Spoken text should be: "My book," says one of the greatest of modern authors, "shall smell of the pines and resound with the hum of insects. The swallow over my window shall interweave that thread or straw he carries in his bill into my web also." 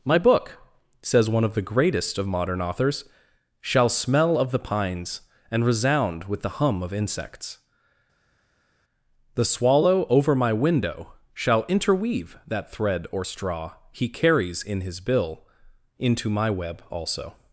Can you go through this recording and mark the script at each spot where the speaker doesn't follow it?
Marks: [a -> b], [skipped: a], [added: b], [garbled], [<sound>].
"My book," says one of the greatest of modern authors, "shall smell of the pines and resound with the hum of insects. The swallow over my window shall interweave that thread or straw he carries in his bill into my web also."